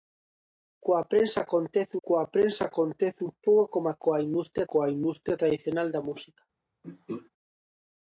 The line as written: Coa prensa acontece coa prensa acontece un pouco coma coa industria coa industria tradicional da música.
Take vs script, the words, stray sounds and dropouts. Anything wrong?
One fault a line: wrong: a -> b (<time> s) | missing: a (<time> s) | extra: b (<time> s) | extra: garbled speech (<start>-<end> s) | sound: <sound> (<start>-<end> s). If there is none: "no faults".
sound: throat clearing (6.8-7.3 s)